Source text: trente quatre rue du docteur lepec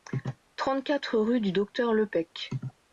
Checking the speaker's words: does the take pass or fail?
pass